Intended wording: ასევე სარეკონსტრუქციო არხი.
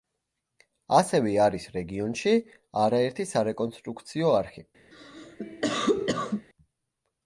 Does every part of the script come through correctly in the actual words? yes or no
no